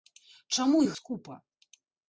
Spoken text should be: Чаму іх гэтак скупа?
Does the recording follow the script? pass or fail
fail